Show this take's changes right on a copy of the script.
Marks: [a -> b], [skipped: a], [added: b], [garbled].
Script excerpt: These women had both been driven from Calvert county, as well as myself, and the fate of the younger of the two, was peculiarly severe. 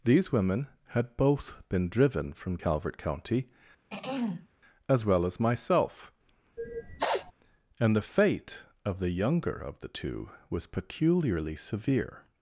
These women had both been driven from Calvert county, as well as myself, and the fate of the younger of the two, was peculiarly severe.